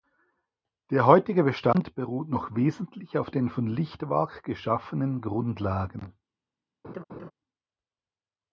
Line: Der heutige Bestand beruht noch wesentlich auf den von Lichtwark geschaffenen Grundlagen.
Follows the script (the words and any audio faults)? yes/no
no